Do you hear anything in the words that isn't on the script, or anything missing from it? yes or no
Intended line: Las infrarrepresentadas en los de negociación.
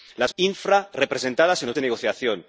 no